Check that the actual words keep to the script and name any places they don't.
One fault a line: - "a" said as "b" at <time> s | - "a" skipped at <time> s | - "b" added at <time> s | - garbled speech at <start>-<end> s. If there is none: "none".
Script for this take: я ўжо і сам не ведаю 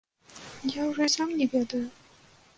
none